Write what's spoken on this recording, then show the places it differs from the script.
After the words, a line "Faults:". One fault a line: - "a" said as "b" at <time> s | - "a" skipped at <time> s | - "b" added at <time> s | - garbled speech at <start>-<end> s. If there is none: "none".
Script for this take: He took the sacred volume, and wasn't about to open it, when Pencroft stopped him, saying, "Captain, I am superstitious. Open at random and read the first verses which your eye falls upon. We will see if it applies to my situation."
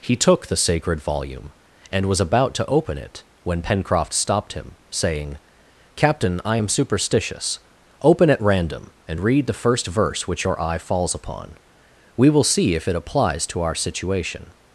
He took the sacred volume, and was about to open it, when Pencroft stopped him, saying, "Captain, I am superstitious. Open at random and read the first verse which your eye falls upon. We will see if it applies to our situation."
Faults:
- "wasn't" said as "was" at 2.1 s
- "verses" said as "verse" at 9.9 s
- "my" said as "our" at 13.6 s